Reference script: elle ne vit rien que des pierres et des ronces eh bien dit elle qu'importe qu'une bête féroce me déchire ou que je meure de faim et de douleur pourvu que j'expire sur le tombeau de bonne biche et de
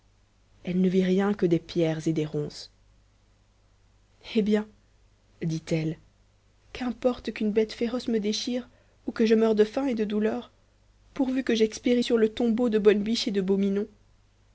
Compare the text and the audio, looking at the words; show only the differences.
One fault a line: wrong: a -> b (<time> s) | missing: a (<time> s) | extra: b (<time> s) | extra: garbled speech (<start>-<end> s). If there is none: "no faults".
no faults